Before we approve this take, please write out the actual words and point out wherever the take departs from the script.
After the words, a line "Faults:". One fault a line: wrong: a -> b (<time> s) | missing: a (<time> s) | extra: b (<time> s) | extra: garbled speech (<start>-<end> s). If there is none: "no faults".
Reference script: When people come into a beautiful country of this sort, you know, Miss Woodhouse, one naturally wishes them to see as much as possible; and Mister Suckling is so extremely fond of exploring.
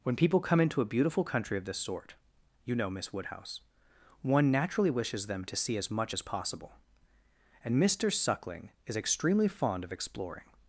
When people come into a beautiful country of this sort, you know, Miss Woodhouse, one naturally wishes them to see as much as possible; and Mister Suckling is extremely fond of exploring.
Faults:
missing: so (9.0 s)